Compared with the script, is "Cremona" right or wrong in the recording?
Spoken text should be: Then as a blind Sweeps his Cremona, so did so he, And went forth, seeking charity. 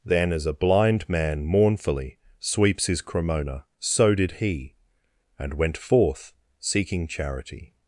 right